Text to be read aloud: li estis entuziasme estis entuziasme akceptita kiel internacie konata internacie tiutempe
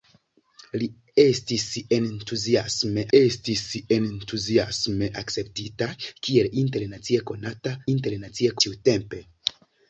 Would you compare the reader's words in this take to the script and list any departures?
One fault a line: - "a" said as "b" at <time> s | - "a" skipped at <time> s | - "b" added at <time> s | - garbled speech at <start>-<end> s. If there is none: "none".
none